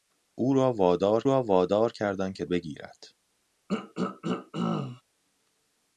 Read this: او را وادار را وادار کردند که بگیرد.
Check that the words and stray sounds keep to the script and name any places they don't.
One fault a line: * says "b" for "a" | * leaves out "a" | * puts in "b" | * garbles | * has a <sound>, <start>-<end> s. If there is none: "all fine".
* has a throat clearing, 3.7-5.0 s